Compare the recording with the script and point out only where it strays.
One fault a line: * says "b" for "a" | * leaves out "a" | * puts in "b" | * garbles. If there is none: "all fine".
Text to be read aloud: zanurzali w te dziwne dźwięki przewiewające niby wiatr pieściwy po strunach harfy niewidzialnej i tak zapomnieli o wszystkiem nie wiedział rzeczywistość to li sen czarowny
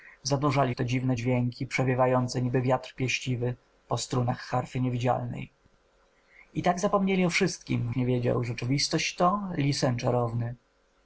all fine